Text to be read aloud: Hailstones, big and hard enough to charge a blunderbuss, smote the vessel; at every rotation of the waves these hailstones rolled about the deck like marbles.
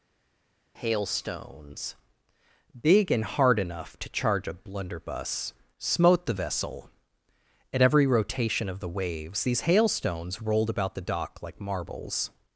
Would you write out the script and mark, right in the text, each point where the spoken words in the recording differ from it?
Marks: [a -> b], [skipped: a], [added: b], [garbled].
Hailstones, big and hard enough to charge a blunderbuss, smote the vessel; at every rotation of the waves these hailstones rolled about the [deck -> dock] like marbles.